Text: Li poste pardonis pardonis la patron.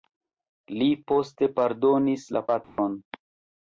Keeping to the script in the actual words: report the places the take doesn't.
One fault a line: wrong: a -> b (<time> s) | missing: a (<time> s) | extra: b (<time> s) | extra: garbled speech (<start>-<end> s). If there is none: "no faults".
missing: pardonis (2.3 s)